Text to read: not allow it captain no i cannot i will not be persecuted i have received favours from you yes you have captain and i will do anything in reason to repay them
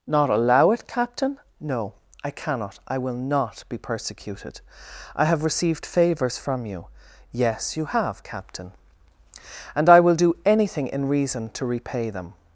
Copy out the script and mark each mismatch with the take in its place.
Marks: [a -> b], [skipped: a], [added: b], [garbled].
not allow it captain no i cannot i will not be persecuted i have received favours from you yes you have captain and i will do anything in reason to repay them